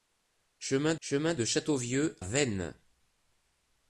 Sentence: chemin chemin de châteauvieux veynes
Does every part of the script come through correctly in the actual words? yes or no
yes